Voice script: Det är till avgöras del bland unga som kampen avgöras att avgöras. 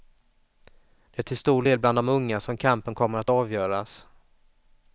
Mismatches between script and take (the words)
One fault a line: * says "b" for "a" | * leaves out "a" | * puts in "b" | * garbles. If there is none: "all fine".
* says "stor" for "avgöras"
* puts in "de"
* says "kommer" for "avgöras"